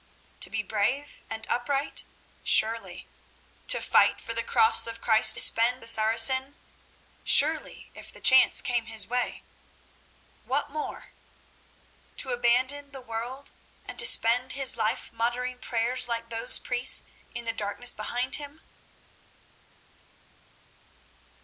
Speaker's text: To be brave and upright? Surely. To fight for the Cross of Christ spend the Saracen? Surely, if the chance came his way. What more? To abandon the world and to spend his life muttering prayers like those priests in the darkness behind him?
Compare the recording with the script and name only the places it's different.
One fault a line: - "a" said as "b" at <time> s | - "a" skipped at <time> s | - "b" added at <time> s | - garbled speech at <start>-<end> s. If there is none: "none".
none